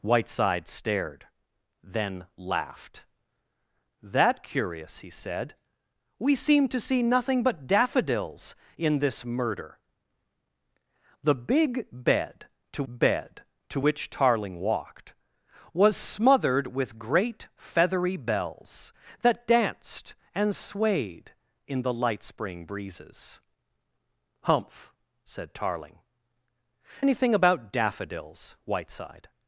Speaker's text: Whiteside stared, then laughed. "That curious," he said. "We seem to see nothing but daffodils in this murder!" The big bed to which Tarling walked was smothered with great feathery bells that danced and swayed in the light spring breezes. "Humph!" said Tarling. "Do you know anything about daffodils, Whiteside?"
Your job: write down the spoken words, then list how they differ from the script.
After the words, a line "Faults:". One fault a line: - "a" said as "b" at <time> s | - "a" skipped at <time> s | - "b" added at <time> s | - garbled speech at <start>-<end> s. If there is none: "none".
Whiteside stared, then laughed. "That curious," he said. "We seem to see nothing but daffodils in this murder!" The big bed to bed to which Tarling walked was smothered with great feathery bells that danced and swayed in the light spring breezes. "Humph!" said Tarling. "Anything about daffodils, Whiteside?"
Faults:
- "bed to" added at 12.9 s
- "Do you know" skipped at 26.0 s